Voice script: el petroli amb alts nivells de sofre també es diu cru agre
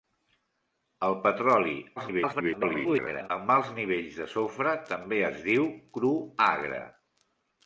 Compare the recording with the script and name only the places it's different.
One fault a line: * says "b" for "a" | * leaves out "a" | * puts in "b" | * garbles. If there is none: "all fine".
* garbles